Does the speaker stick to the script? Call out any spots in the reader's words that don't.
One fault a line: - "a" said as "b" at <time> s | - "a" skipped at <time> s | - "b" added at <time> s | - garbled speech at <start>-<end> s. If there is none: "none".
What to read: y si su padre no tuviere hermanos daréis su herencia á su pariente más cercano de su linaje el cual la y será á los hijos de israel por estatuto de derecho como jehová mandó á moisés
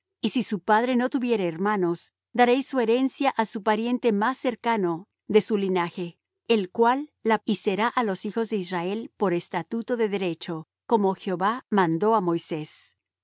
none